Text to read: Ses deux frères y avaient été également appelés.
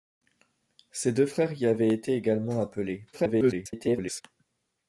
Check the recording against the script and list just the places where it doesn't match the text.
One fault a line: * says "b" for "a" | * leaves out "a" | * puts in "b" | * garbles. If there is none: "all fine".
* garbles